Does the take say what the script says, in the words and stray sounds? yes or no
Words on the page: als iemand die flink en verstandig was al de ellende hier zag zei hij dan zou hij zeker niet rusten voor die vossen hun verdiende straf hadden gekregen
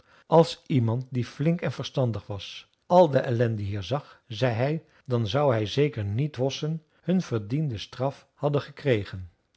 no